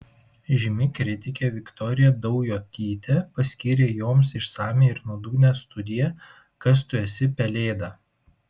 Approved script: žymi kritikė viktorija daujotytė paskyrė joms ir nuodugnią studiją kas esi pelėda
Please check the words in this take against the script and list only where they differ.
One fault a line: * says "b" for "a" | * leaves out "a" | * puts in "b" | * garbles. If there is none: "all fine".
* puts in "išsamią"
* puts in "tu"